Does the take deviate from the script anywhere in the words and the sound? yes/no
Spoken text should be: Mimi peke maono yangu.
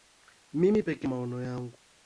no